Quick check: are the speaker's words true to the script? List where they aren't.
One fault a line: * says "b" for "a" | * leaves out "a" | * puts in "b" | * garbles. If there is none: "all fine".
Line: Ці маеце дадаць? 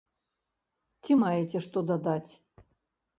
* puts in "што"